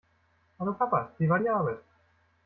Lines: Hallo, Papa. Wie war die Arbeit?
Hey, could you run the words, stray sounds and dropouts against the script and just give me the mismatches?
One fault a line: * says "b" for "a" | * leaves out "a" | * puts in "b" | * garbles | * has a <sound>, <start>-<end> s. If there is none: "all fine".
all fine